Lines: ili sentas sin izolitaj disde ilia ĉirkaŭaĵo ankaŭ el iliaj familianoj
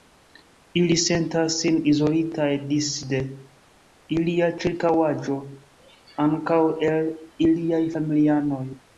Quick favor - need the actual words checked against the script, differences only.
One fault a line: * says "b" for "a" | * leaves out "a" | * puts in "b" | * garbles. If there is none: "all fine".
all fine